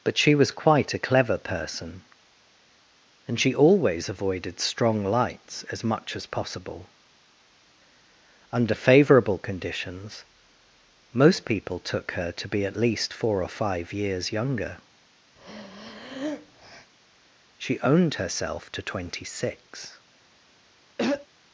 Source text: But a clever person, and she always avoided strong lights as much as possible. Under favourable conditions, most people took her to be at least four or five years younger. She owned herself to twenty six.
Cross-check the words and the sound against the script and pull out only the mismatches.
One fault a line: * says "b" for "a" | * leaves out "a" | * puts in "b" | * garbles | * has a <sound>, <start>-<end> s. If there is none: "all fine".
* puts in "she was quite"
* has a breath, 15.4-16.9 s
* has a throat clearing, 21.0-21.3 s